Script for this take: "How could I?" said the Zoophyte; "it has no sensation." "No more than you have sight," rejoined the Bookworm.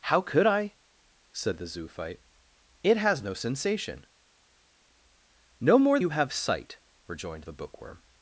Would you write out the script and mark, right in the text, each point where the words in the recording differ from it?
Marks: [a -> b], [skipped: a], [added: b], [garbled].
"How could I?" said the Zoophyte; "it has no sensation." "No more [skipped: than] you have sight," rejoined the Bookworm.